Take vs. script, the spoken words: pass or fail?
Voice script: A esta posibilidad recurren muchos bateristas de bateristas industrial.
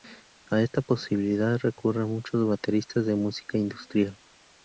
fail